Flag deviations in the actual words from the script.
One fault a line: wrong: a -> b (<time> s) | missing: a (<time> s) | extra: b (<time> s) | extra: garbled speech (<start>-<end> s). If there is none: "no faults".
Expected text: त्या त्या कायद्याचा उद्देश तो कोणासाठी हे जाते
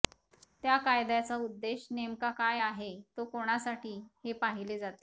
missing: त्या (0.8 s)
extra: नेमका काय आहे (1.9 s)
extra: पाहिले (4.3 s)